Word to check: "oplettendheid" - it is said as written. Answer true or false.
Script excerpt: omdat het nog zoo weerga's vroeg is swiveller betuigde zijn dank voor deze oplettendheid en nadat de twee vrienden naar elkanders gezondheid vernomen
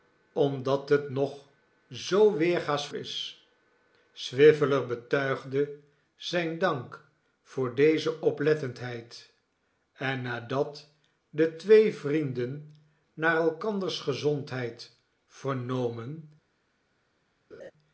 true